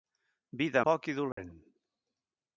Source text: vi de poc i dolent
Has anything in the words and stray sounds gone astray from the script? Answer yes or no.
yes